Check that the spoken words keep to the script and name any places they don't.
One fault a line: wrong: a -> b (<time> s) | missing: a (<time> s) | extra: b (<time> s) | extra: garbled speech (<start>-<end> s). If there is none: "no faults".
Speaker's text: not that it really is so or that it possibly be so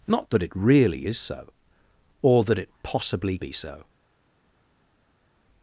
no faults